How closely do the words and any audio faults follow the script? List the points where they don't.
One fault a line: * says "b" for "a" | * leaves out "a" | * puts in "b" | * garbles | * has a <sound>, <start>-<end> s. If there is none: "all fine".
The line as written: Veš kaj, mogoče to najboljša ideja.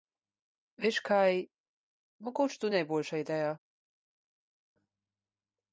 all fine